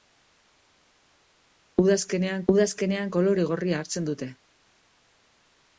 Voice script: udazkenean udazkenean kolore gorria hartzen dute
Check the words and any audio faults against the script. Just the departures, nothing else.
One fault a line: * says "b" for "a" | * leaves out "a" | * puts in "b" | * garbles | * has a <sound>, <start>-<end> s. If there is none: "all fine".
all fine